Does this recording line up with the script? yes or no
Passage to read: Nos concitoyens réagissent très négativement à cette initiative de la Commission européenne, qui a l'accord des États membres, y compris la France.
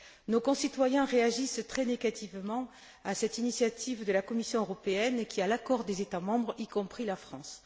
yes